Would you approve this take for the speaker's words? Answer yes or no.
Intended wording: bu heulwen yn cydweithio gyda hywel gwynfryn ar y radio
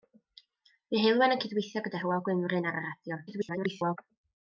no